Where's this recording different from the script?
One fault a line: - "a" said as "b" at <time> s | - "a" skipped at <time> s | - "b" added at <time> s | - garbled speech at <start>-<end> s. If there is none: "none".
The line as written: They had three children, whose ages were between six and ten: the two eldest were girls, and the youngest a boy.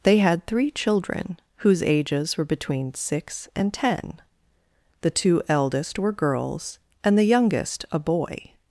none